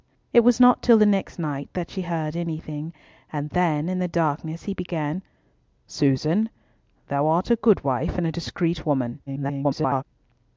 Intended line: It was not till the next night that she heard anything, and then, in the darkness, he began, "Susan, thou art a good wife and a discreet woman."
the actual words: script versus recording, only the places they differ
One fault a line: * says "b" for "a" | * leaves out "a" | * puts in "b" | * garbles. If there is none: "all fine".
* garbles